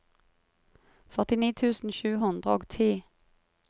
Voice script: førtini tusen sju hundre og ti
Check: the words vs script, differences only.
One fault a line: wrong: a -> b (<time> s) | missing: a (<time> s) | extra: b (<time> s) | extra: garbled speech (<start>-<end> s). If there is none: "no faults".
no faults